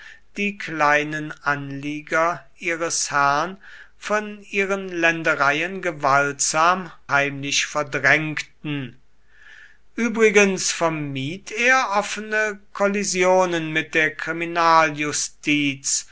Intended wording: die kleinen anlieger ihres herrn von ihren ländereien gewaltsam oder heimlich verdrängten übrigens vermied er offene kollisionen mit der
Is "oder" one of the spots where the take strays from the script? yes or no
yes